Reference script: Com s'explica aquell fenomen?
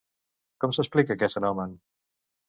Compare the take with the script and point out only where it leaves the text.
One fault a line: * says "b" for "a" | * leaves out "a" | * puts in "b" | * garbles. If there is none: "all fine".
* says "aquest" for "aquell"